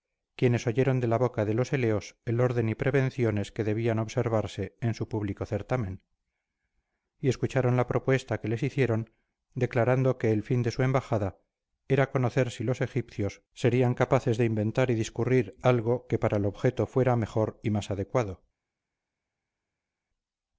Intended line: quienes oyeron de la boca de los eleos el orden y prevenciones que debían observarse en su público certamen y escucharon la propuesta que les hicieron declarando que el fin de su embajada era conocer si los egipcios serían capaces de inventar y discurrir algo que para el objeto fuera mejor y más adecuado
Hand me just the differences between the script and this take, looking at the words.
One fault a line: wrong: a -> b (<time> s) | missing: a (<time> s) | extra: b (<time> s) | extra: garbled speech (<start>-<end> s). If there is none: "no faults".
no faults